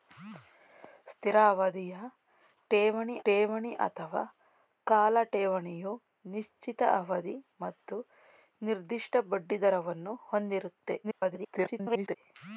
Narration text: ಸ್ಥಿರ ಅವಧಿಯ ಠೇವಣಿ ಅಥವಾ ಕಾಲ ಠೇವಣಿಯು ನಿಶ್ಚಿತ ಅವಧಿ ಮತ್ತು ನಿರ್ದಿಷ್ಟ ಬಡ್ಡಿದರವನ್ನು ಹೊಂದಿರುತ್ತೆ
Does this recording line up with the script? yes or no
no